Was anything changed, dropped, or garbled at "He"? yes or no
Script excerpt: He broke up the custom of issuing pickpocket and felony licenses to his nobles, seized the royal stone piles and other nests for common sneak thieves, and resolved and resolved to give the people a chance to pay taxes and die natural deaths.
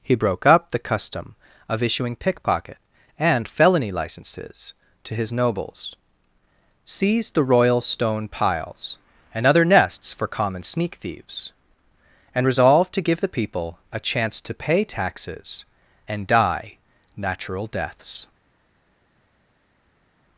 no